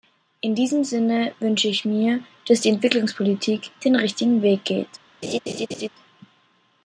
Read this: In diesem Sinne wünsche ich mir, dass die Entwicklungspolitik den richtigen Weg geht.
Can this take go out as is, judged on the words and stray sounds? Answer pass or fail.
fail